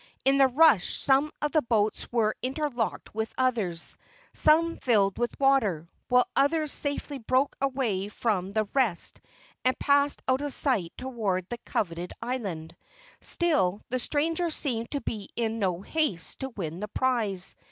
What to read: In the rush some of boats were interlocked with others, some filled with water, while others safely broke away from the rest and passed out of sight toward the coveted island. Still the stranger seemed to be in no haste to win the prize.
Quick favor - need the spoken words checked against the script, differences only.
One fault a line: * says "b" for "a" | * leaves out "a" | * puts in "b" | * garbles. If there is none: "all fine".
* puts in "the"